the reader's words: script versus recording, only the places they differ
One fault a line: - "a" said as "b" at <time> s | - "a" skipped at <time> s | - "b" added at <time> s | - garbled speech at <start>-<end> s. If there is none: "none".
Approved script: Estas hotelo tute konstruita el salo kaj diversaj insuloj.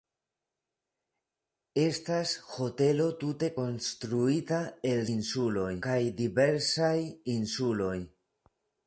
- "salo" said as "insuloj" at 5.1 s